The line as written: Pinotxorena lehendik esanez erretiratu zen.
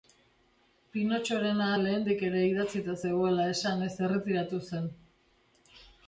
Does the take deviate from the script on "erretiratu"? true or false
false